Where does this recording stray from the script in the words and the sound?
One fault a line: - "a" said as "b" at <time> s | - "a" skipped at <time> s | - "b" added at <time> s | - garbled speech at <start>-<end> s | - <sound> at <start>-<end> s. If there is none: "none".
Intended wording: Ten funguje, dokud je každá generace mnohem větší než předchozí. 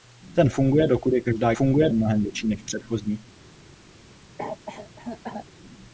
- "generace" said as "funguje" at 1.5 s
- cough at 4.4-5.5 s